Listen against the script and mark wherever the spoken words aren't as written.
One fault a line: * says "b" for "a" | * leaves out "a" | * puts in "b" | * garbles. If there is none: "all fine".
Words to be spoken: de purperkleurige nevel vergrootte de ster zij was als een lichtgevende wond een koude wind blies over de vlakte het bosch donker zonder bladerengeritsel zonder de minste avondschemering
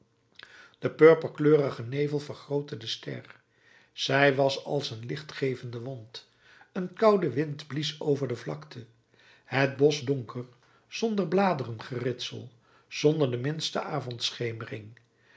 all fine